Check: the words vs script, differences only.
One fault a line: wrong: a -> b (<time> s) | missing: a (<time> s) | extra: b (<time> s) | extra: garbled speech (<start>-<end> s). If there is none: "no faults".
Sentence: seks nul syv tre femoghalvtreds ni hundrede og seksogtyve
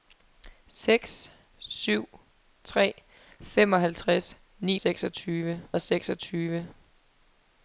missing: nul (1.3 s)
wrong: hundrede -> seksogtyve (4.7 s)